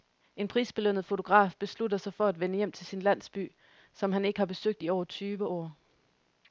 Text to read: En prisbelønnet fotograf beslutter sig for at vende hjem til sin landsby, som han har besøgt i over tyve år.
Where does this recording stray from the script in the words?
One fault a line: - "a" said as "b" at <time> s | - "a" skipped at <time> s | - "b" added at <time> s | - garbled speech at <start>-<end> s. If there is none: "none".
- "ikke" added at 4.2 s